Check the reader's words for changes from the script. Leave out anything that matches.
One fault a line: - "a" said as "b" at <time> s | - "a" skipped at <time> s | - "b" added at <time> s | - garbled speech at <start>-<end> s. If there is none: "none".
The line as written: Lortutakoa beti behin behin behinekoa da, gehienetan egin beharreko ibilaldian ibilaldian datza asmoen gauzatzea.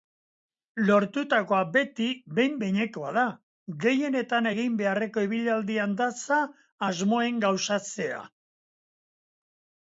- "behin" skipped at 2.5 s
- "ibilaldian" skipped at 6.0 s